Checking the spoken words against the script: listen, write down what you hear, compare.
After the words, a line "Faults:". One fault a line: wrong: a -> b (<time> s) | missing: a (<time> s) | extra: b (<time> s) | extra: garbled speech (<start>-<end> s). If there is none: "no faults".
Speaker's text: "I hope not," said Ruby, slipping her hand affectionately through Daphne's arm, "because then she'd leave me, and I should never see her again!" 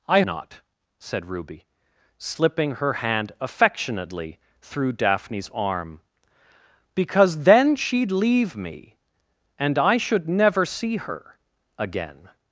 "I not," said Ruby, slipping her hand affectionately through Daphne's arm, "because then she'd leave me, and I should never see her again!"
Faults:
missing: hope (0.2 s)